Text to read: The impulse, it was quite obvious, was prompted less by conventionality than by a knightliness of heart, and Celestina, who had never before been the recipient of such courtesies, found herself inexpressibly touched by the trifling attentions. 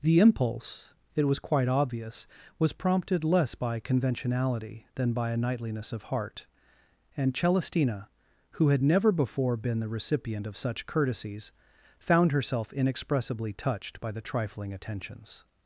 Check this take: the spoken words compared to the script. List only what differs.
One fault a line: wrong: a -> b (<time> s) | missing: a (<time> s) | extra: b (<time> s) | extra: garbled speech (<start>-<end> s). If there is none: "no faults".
no faults